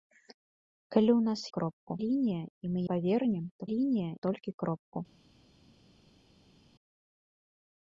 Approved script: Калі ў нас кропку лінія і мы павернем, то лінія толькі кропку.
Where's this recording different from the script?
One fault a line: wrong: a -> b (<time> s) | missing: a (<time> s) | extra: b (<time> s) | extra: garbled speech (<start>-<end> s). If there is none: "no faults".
no faults